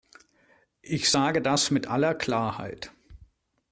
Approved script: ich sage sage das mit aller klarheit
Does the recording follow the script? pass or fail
fail